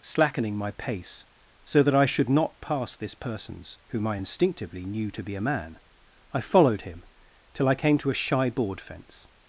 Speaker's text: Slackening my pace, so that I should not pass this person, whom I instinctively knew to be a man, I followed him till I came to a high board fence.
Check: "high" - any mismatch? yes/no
yes